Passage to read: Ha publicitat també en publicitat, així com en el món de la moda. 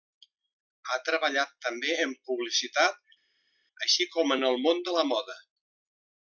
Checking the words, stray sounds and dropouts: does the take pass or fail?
fail